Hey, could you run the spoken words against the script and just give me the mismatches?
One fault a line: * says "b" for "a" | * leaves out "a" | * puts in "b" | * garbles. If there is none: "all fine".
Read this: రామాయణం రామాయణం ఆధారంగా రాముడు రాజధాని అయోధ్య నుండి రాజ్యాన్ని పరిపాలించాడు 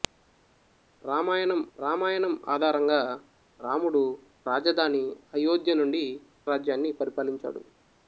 all fine